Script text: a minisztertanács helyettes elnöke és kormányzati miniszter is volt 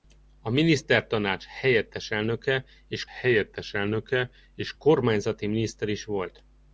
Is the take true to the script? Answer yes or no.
no